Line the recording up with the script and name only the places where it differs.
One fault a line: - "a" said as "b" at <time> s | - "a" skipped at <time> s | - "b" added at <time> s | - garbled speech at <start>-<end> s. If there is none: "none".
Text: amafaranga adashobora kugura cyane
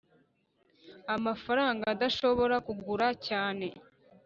none